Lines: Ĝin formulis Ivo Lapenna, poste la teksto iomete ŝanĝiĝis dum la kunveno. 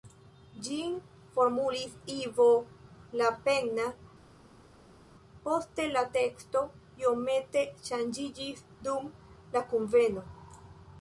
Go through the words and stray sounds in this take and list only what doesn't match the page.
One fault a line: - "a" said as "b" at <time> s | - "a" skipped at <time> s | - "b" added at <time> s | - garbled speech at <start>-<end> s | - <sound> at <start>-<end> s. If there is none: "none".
none